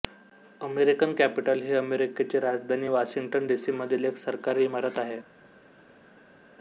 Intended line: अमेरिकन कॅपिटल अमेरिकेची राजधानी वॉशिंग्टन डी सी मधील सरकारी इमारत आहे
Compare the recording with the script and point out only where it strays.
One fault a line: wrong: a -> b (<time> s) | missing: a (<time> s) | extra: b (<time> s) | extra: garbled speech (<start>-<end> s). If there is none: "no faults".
extra: ही (1.6 s)
extra: एक (4.0 s)